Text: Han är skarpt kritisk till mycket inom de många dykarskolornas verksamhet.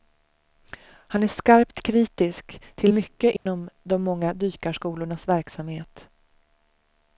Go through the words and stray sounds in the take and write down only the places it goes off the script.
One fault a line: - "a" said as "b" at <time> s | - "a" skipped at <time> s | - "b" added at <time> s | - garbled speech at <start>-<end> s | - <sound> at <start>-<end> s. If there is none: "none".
- dropout at 3.4-3.5 s